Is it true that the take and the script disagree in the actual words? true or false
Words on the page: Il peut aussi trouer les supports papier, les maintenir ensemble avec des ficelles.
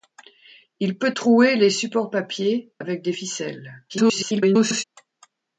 true